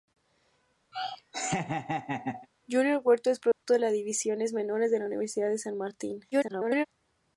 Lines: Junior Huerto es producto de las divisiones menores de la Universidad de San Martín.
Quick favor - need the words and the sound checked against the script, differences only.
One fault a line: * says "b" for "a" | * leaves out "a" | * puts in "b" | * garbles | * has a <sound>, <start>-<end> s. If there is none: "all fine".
* has a laugh, 0.9-2.5 s
* has a dropout, 3.5-3.6 s
* garbles